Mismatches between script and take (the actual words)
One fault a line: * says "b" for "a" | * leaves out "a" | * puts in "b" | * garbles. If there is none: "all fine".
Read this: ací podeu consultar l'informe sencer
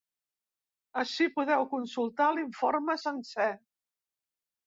all fine